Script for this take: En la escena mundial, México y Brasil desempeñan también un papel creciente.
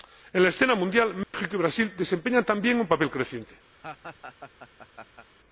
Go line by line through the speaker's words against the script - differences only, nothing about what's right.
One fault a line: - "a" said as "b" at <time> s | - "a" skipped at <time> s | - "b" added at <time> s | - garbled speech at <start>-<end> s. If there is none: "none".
none